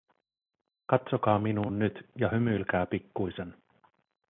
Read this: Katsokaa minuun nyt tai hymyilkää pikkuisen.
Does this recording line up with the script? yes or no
no